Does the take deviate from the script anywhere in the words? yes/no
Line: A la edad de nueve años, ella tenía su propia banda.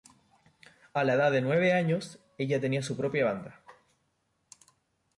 no